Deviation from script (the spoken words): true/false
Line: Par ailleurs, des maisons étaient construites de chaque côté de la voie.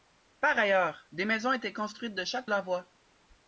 true